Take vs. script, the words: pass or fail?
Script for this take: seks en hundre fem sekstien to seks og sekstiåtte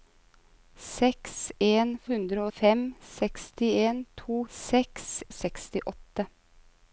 pass